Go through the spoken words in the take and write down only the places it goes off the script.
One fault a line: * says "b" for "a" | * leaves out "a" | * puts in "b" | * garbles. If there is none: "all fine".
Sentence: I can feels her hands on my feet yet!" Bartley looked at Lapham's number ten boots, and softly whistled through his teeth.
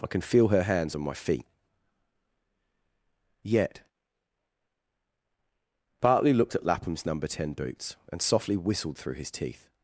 * says "feel" for "feels"